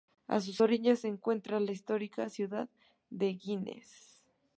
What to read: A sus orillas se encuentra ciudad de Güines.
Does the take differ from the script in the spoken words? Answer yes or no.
yes